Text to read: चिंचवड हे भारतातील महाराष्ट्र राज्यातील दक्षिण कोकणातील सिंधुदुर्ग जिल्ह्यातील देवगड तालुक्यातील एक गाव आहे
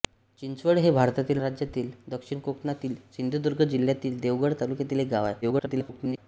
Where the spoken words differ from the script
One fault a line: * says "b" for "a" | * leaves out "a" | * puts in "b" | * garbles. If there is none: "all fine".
* leaves out "महाराष्ट्र"
* garbles